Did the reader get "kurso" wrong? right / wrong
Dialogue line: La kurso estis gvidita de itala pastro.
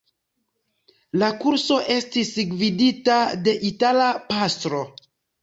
right